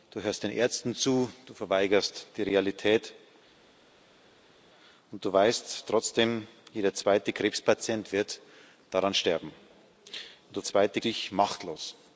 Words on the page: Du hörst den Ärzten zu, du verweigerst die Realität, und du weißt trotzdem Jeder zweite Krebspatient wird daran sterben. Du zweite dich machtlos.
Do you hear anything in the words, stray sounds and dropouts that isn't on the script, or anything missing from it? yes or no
no